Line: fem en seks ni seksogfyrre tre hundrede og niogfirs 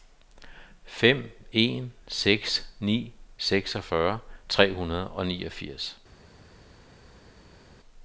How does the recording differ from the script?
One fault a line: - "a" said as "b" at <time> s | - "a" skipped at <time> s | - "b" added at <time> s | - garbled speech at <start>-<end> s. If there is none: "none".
none